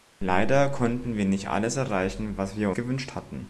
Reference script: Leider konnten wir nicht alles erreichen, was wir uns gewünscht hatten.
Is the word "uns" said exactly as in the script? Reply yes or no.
no